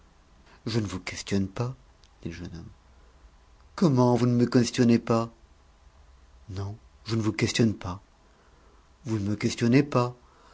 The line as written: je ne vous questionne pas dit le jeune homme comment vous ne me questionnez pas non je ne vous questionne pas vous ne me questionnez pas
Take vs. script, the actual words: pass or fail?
pass